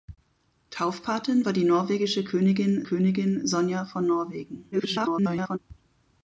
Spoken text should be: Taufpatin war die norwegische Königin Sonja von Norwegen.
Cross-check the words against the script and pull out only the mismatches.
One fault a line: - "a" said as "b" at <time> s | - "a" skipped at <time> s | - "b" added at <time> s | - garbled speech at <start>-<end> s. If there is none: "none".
- "Königin" added at 2.8 s
- garbled speech at 4.7-5.6 s